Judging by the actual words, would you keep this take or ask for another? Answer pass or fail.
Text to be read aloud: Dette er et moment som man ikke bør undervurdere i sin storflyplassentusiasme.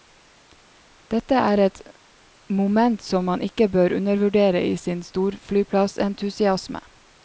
pass